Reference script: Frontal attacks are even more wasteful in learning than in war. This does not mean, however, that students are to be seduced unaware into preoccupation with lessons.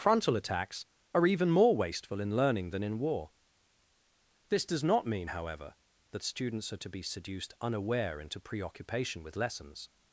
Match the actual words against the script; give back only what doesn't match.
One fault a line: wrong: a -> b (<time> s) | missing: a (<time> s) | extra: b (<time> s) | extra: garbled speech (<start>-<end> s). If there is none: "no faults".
no faults